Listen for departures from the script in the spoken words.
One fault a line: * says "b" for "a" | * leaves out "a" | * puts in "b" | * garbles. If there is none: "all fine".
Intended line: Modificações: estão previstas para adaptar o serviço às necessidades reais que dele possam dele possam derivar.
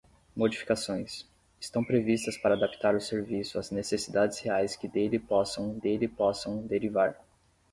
all fine